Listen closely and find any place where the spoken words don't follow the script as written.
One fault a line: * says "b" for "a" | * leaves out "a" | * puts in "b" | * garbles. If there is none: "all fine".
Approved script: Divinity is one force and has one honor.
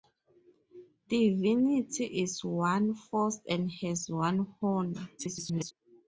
* garbles